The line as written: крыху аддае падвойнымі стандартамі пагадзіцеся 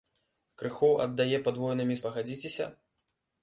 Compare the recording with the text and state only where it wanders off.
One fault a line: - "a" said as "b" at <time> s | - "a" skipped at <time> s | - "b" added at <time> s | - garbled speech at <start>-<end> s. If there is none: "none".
- "стандартамі" skipped at 2.0 s